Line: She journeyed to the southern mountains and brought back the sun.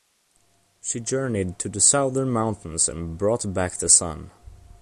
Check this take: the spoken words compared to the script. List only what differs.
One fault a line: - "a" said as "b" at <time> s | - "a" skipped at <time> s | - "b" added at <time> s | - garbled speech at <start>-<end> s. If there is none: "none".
none